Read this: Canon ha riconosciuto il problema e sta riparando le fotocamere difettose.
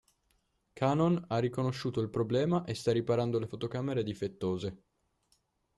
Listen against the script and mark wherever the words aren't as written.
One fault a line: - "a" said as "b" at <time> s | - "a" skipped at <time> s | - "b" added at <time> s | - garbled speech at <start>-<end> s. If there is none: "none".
none